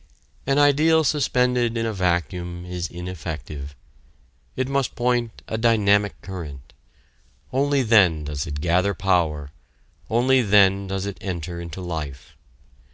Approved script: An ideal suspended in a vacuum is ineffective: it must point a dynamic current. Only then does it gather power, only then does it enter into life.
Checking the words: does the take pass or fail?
pass